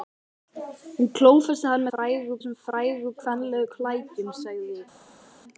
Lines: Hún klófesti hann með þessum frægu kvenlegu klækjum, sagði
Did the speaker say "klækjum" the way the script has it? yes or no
yes